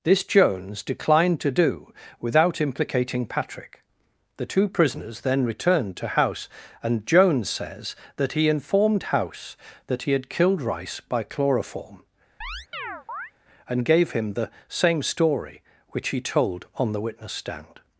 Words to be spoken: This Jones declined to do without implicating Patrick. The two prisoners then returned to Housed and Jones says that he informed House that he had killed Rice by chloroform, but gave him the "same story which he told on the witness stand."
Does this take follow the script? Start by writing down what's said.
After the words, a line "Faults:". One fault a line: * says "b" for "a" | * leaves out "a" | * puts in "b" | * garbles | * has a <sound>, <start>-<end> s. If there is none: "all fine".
This Jones declined to do without implicating Patrick. The two prisoners then returned to House and Jones says that he informed House that he had killed Rice by chloroform, and gave him the "same story which he told on the witness stand."
Faults:
* says "House" for "Housed"
* has a chirp, 12.4-13.3 s
* says "and" for "but"